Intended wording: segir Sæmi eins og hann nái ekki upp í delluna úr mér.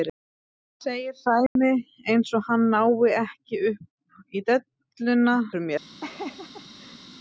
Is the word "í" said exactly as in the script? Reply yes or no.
yes